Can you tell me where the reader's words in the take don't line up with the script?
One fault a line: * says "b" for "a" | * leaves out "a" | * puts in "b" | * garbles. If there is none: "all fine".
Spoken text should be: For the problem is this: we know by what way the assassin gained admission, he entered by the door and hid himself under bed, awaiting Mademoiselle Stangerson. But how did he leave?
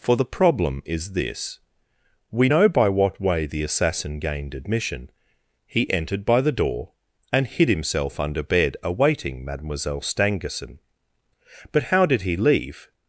all fine